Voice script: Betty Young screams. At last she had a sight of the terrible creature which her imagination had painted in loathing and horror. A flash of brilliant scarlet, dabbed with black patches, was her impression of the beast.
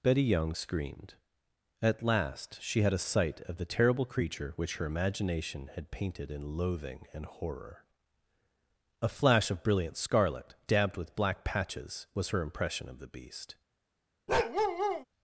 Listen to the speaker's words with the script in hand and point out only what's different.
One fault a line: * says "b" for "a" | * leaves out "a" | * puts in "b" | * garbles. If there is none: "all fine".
* says "screamed" for "screams"